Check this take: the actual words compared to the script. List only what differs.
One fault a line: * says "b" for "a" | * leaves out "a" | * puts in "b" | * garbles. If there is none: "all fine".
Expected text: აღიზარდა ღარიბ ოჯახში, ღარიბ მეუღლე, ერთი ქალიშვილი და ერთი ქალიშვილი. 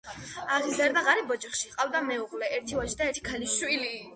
* says "ჰყავდა" for "ღარიბ"
* says "ვაჟი" for "ქალიშვილი"